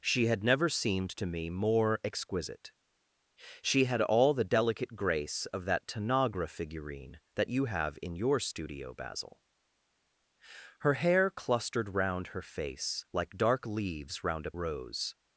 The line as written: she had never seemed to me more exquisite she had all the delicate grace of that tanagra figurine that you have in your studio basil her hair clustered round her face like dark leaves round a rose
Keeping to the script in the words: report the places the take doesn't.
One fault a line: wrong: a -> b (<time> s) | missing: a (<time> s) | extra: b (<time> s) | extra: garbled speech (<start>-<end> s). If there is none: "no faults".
no faults